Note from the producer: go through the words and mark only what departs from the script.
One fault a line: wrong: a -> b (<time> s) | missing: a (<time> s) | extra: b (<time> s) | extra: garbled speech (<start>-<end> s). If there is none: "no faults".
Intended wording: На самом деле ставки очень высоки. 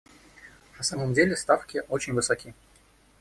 no faults